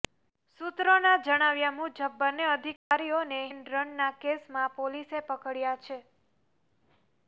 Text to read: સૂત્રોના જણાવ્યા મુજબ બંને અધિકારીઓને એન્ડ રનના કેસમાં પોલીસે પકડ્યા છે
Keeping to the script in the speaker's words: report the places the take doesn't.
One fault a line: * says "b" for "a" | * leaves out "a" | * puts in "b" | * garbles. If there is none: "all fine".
all fine